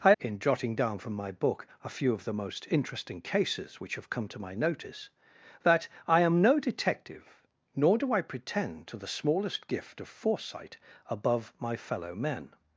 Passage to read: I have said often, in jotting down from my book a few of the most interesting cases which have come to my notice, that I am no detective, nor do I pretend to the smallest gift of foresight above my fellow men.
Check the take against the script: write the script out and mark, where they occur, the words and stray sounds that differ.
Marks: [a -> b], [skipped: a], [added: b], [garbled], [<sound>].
I [skipped: have said often,] in jotting down from my book a few of the most interesting cases which have come to my notice, that I am no detective, nor do I pretend to the smallest gift of foresight above my fellow men.